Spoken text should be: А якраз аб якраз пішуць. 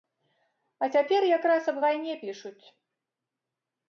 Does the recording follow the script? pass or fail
fail